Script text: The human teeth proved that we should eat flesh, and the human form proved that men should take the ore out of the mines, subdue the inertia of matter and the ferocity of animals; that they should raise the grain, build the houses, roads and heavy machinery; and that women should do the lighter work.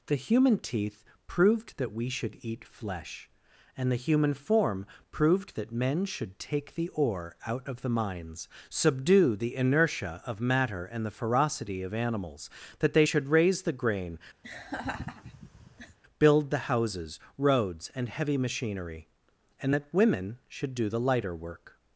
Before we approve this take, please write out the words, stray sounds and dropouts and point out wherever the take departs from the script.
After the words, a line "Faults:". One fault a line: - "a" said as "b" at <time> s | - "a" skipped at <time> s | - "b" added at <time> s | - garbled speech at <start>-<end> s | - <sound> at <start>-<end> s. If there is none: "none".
The human teeth proved that we should eat flesh, and the human form proved that men should take the ore out of the mines, subdue the inertia of matter and the ferocity of animals; that they should raise the grain, build the houses, roads and heavy machinery; and that women should do the lighter work.
Faults:
- laugh at 14.4-16.0 s